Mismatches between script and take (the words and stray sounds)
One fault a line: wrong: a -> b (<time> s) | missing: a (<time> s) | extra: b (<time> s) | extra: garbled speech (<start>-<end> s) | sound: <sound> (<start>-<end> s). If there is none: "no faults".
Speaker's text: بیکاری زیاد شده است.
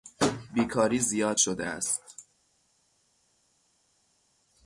no faults